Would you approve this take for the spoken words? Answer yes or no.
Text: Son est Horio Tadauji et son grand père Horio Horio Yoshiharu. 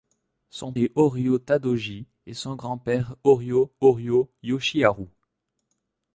yes